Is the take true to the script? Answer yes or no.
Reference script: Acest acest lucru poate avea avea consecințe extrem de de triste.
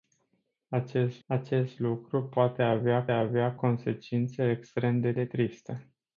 yes